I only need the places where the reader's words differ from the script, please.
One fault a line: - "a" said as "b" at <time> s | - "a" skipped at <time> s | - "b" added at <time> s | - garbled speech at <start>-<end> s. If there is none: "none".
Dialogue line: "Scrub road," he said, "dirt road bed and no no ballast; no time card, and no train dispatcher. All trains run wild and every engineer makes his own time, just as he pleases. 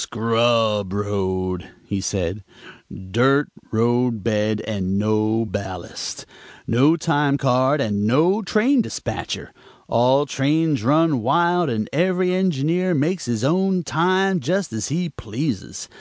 - "no" skipped at 5.5 s